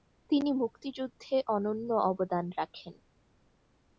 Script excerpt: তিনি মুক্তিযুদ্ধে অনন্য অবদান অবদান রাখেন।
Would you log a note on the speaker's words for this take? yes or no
yes